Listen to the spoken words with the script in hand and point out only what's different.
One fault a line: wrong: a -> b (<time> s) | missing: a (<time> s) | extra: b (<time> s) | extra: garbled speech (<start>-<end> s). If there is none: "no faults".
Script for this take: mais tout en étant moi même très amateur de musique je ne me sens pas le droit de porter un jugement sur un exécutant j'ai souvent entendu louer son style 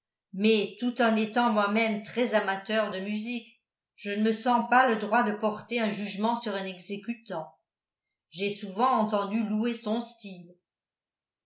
no faults